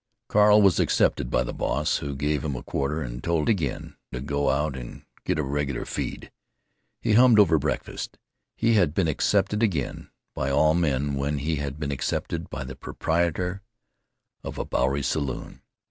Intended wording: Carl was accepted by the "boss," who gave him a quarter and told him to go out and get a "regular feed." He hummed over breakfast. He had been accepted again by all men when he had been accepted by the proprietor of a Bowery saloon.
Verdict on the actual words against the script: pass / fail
fail